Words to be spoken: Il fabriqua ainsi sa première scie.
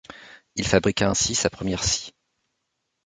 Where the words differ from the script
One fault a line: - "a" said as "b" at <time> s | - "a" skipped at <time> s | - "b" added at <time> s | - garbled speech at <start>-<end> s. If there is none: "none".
none